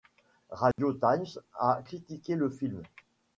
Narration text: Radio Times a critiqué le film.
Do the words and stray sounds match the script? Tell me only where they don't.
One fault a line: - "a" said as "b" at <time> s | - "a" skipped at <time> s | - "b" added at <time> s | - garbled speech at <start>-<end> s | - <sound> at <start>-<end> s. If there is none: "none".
- dropout at 0.7-0.8 s